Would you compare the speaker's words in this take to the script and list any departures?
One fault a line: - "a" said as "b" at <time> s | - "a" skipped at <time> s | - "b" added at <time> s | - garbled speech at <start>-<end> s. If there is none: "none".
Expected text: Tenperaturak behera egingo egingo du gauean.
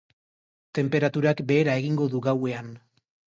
- "egingo" skipped at 2.1 s